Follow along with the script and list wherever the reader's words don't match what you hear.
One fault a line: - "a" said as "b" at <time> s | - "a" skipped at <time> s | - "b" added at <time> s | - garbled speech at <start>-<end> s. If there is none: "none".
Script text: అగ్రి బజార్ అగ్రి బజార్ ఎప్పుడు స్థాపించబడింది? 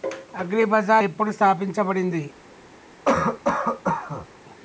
- "అగ్రి బజార్" skipped at 1.1 s